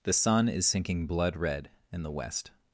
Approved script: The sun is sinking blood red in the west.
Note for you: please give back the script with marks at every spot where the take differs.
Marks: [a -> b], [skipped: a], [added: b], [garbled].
The sun is sinking blood red in the west.